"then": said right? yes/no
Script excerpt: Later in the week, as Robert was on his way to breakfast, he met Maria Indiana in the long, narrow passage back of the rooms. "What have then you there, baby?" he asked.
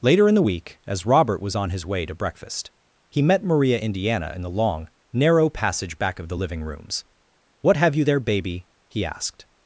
no